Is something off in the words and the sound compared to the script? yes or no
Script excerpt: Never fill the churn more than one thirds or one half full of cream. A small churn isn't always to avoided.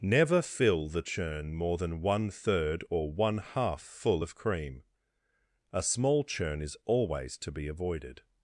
yes